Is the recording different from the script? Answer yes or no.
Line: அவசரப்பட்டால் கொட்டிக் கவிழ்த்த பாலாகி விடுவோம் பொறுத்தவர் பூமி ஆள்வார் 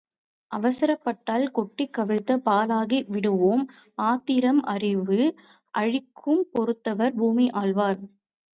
yes